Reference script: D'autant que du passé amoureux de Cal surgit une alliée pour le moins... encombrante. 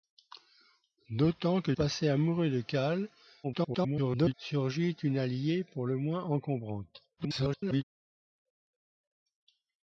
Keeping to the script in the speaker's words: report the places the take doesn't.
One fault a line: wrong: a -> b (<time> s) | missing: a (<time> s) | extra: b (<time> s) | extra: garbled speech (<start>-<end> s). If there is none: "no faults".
missing: du (1.7 s)
extra: garbled speech (3.4-4.3 s)
extra: garbled speech (7.2-7.8 s)